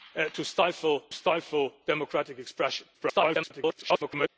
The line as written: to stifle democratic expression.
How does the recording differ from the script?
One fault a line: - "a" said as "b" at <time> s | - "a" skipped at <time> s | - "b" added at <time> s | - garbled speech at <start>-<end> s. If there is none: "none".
- "stifle" added at 1.1 s
- garbled speech at 2.9-4.3 s